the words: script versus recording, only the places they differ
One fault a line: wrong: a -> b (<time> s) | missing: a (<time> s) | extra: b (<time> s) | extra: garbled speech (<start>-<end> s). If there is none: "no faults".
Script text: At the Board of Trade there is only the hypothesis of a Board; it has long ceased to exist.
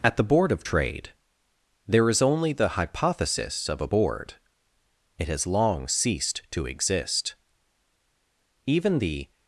extra: Even the (8.7 s)